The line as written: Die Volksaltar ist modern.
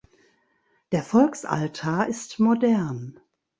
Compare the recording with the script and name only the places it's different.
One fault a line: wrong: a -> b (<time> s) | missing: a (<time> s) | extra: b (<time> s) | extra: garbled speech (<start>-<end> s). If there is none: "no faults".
wrong: Die -> Der (0.9 s)